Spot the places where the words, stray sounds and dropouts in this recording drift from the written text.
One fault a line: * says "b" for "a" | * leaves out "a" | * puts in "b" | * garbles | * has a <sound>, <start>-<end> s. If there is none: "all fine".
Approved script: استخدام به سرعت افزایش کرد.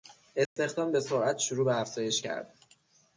* has a dropout, 0.5-0.6 s
* puts in "شروع به"